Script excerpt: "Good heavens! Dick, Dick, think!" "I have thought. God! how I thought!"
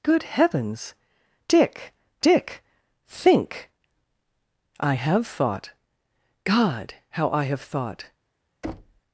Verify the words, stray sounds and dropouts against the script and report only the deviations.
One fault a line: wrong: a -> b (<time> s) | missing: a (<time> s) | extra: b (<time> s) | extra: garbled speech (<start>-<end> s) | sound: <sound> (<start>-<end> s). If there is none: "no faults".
extra: have (7.4 s)
sound: thud (8.6-9.0 s)